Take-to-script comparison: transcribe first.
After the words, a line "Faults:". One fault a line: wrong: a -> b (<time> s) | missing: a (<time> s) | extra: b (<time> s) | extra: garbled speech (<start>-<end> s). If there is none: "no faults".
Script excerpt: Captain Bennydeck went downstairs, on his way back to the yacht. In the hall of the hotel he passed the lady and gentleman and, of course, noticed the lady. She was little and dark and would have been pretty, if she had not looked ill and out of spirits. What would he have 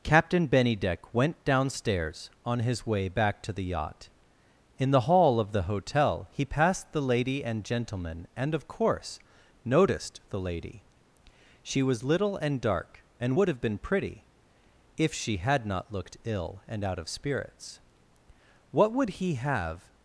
Captain Bennydeck went downstairs, on his way back to the yacht. In the hall of the hotel he passed the lady and gentleman and, of course, noticed the lady. She was little and dark and would have been pretty, if she had not looked ill and out of spirits. What would he have
Faults:
no faults